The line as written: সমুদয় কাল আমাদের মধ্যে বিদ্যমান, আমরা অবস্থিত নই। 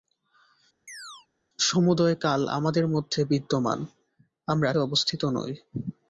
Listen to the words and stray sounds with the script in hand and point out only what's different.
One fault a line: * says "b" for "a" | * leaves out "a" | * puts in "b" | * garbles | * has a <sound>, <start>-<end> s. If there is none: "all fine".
* has a chirp, 0.9-1.3 s